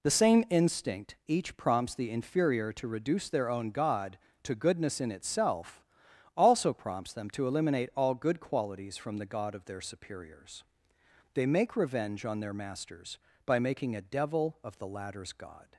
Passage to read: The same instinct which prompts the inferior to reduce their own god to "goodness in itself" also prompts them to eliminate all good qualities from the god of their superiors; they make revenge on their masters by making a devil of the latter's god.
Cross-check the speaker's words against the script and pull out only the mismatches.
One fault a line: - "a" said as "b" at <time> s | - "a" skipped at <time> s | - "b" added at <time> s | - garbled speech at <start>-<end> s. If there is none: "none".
- "which" said as "each" at 1.3 s